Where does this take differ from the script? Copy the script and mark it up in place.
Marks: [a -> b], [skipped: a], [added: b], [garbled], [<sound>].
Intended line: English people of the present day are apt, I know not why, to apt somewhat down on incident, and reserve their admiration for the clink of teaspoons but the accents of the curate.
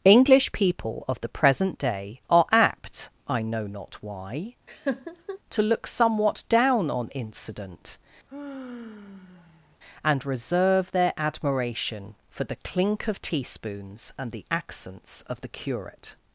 English people of the present day are apt, I know not why, [laugh] to [apt -> look] somewhat down on incident, [sigh] and reserve their admiration for the clink of teaspoons [but -> and] the accents of the curate.